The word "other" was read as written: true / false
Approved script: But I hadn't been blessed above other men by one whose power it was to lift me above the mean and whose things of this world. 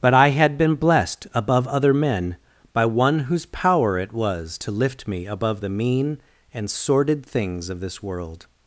true